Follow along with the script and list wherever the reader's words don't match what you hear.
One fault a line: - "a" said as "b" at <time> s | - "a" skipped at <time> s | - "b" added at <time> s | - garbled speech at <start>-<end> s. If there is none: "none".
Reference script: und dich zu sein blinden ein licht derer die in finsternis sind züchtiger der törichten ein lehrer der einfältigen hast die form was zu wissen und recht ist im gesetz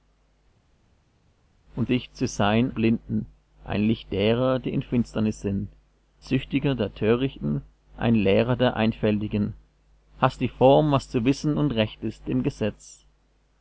none